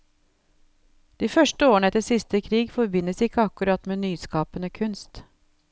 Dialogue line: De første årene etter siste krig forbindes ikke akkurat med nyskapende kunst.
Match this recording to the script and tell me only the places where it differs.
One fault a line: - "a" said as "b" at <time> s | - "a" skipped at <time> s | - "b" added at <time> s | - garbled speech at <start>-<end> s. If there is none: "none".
none